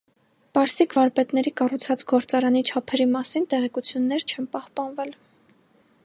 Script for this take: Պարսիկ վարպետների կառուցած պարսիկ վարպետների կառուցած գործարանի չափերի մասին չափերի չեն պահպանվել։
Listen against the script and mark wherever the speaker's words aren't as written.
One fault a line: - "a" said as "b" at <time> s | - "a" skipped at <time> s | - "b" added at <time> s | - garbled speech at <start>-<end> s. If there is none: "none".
- "պարսիկ վարպետների կառուցած" skipped at 2.0 s
- "չափերի" said as "տեղեկություններ" at 3.5 s